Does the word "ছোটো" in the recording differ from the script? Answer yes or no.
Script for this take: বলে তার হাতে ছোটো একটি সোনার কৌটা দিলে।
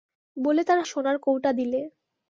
yes